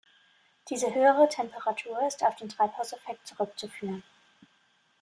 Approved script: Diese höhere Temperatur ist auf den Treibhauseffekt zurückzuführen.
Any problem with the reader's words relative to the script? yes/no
no